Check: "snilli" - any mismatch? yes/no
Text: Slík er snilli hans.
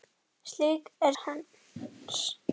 yes